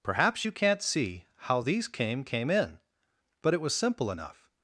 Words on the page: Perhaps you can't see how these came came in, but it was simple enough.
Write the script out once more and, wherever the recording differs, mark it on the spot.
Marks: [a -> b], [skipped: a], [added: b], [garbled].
Perhaps you can't see how these came came in, but it was simple enough.